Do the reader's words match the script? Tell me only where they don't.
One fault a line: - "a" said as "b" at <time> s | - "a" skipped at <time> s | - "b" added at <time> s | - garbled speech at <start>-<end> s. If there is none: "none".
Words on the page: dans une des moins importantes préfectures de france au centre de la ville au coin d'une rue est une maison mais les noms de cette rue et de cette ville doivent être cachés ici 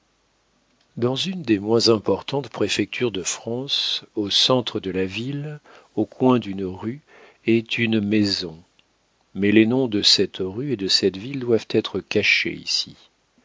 none